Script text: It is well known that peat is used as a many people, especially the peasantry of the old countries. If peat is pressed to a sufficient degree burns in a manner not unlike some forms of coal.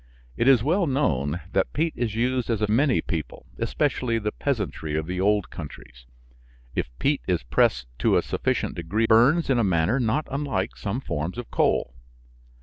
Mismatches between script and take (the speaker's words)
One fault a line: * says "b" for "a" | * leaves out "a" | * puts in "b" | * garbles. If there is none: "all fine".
all fine